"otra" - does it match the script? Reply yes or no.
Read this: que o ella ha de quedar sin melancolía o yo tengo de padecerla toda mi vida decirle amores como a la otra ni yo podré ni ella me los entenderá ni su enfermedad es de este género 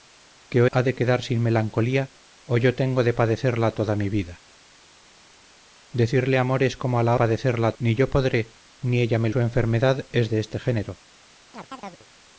no